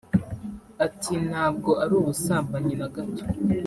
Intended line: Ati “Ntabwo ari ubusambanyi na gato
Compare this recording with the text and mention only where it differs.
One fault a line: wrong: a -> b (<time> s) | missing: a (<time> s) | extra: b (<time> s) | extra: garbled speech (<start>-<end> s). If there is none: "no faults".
no faults